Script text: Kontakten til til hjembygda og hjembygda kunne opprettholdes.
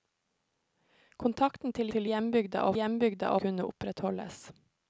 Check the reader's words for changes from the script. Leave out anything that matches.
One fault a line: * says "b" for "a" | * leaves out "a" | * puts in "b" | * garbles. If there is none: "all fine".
all fine